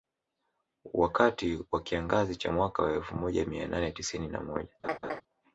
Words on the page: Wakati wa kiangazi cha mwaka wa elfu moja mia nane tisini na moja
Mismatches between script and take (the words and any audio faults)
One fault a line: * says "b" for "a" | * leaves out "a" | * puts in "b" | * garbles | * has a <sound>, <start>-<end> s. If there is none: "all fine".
* has a laugh, 4.8-5.2 s